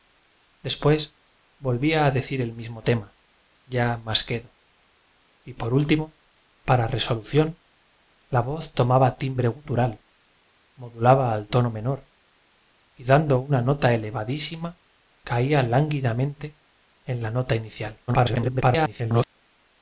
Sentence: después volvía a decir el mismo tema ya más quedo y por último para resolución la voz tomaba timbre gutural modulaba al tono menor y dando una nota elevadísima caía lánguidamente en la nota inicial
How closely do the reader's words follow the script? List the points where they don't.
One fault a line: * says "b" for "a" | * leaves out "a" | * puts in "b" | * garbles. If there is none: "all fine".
* garbles